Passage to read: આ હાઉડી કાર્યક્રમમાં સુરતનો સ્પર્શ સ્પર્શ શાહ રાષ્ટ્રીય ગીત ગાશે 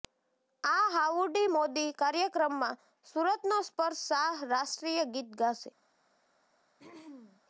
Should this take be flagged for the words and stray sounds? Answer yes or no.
yes